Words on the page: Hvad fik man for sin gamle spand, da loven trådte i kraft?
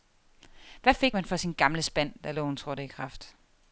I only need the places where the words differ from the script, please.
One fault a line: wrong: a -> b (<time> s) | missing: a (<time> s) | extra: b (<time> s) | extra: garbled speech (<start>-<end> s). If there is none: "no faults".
no faults